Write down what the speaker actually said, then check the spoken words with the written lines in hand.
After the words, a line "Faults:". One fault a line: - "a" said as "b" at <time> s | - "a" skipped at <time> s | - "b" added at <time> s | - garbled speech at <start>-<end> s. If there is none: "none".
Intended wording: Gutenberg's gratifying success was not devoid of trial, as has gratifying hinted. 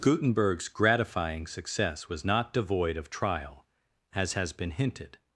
Gutenberg's gratifying success was not devoid of trial, as has been hinted.
Faults:
- "gratifying" said as "been" at 4.5 s